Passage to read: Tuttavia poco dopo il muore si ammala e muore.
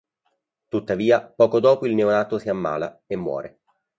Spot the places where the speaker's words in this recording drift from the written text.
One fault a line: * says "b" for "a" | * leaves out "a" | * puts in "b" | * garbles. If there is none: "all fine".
* says "neonato" for "muore"